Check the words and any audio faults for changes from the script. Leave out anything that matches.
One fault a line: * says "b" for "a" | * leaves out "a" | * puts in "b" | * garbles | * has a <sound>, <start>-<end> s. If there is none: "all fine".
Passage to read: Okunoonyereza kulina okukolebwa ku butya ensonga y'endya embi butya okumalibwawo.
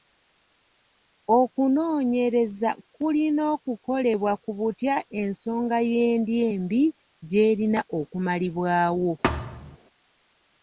* says "gy'erina" for "butya"
* has a thud, 9.2-9.8 s